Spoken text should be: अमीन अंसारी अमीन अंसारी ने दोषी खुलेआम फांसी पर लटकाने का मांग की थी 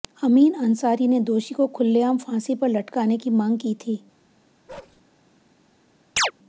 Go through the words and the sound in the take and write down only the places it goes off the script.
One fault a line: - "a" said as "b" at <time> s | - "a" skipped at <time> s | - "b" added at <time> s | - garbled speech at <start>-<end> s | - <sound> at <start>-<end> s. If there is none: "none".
- "अमीन अंसारी" skipped at 1.1 s
- "को" added at 1.6 s
- "का" said as "की" at 3.2 s
- bark at 4.7-5.0 s
- chirp at 6.2-6.3 s